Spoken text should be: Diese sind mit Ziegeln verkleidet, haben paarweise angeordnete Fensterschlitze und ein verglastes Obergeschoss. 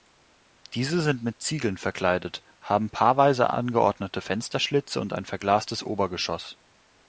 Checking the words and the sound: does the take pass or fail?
pass